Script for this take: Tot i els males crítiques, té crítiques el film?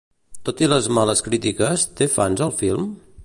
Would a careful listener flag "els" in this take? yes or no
yes